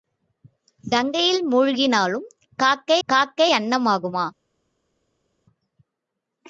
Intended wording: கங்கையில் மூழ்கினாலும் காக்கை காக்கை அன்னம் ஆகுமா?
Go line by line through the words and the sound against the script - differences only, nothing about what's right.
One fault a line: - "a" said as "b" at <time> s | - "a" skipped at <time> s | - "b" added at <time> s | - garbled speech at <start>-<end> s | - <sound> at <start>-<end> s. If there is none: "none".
none